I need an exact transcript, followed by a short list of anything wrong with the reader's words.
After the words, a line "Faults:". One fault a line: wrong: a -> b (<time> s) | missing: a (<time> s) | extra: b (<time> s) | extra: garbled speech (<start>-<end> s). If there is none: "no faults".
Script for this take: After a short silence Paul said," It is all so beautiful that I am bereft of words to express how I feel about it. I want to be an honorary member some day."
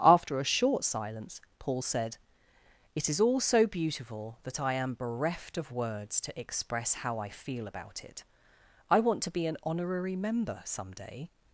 After a short silence Paul said," It is all so beautiful that I am bereft of words to express how I feel about it. I want to be an honorary member some day."
Faults:
no faults